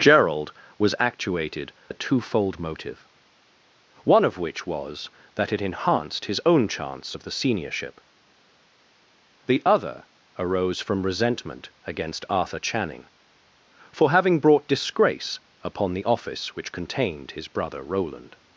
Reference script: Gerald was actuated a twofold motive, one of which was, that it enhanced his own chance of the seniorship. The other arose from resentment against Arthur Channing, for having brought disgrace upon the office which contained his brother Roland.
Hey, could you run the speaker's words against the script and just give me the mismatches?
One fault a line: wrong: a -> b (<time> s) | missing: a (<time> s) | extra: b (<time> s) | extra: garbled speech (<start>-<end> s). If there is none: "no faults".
no faults